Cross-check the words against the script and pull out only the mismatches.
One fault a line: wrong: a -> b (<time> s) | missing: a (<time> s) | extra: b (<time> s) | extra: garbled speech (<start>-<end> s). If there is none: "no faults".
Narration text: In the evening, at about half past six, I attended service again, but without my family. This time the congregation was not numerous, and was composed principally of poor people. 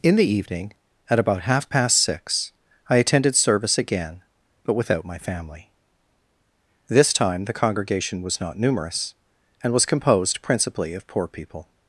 no faults